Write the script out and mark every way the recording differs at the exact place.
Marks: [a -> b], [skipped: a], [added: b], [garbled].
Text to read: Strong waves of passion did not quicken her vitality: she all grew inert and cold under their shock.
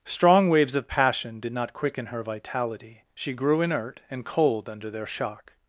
Strong waves of passion did not quicken her vitality: she [skipped: all] grew inert and cold under their shock.